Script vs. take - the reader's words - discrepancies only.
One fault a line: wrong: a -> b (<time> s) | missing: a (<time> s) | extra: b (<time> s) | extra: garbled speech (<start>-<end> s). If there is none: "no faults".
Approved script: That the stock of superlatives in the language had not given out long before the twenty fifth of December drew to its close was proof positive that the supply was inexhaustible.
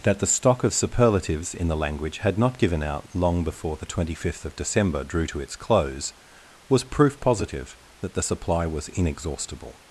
no faults